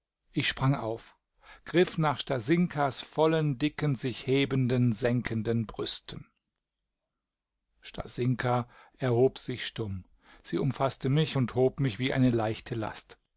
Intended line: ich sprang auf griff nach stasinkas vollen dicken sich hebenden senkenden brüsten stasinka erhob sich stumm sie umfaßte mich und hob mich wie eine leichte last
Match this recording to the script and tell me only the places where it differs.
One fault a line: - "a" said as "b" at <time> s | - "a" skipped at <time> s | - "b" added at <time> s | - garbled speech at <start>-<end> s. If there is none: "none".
none